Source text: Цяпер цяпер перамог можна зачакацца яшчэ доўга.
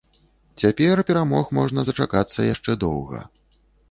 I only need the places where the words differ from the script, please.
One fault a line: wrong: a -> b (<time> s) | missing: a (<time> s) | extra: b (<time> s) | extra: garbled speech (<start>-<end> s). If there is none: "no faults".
missing: цяпер (1.0 s)